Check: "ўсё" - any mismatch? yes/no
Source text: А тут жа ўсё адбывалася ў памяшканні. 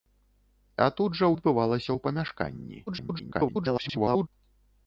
yes